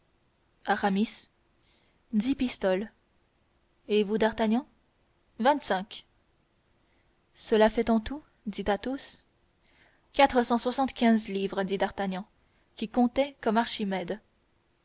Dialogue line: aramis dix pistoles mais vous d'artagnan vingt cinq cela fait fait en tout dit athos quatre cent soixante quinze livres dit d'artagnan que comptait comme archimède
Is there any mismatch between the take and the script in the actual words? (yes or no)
yes